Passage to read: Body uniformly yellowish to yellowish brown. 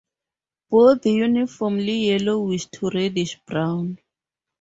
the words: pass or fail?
fail